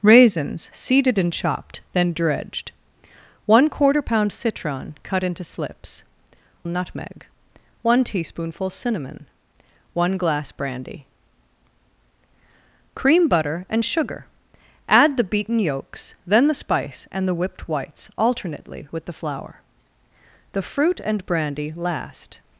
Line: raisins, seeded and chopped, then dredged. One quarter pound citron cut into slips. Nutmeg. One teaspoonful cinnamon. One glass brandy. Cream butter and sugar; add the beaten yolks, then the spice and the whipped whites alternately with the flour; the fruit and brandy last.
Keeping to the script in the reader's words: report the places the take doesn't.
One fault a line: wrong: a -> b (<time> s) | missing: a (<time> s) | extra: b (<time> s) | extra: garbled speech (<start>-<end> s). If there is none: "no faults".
no faults